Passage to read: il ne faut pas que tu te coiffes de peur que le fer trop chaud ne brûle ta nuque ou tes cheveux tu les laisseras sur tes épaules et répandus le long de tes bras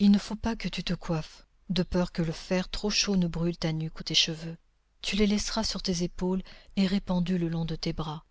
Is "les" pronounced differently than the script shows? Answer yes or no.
no